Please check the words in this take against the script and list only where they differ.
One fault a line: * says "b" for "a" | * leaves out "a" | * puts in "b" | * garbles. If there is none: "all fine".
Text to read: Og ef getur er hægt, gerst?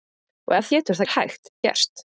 all fine